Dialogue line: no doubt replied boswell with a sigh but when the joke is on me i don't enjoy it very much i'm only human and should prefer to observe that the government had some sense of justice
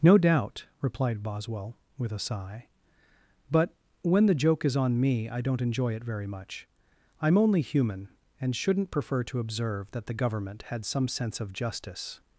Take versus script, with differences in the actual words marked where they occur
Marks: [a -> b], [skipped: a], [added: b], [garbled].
no doubt replied boswell with a sigh but when the joke is on me i don't enjoy it very much i'm only human and [should -> shouldn't] prefer to observe that the government had some sense of justice